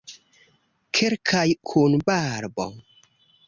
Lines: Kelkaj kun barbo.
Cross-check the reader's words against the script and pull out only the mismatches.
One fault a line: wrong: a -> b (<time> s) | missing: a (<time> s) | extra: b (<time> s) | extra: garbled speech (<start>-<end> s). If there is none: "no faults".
no faults